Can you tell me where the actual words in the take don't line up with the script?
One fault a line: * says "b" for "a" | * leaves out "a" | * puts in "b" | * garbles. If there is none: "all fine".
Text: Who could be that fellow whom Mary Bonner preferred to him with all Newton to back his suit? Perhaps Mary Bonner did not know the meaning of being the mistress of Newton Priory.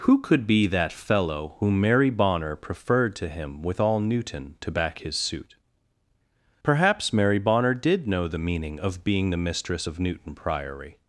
* leaves out "not"